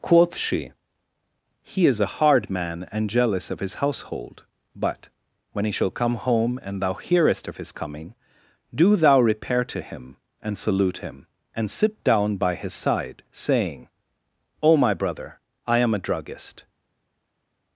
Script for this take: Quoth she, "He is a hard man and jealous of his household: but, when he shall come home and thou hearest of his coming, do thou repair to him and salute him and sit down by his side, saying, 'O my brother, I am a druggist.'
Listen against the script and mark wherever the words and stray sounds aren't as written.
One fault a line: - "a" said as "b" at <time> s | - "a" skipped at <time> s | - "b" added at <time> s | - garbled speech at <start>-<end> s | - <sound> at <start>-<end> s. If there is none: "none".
none